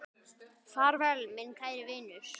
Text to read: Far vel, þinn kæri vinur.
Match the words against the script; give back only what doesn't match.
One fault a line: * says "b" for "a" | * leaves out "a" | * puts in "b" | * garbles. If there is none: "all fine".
* says "minn" for "þinn"